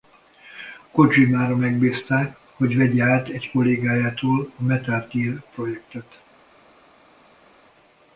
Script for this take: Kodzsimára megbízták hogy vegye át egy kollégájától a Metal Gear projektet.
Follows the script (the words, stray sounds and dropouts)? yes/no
yes